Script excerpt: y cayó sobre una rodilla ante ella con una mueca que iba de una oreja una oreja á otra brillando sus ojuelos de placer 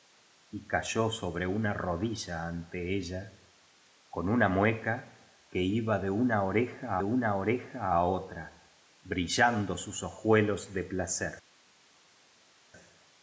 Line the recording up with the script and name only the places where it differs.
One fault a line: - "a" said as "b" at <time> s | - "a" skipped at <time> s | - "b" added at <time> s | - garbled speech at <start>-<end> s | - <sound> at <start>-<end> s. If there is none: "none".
none